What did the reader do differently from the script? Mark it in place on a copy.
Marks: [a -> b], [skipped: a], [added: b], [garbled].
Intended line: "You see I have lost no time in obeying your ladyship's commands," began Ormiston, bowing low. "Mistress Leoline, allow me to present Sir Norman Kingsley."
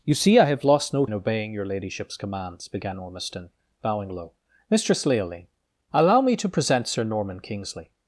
"You see I have lost no [skipped: time] in obeying your ladyship's commands," began Ormiston, bowing low. "Mistress Leoline, allow me to present Sir Norman Kingsley."